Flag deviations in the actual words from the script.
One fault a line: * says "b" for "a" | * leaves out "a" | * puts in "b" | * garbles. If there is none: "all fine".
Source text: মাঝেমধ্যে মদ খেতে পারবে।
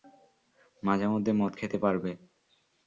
all fine